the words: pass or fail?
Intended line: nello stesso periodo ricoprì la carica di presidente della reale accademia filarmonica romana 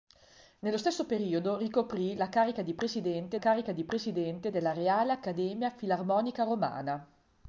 fail